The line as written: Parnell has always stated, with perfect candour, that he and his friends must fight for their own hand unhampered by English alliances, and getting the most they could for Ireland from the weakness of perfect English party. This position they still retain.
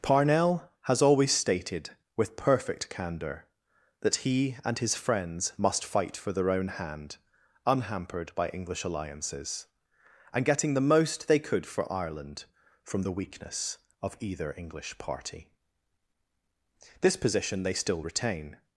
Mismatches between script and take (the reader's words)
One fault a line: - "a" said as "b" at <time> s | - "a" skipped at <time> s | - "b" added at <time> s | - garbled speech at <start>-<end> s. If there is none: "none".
- "perfect" said as "either" at 14.2 s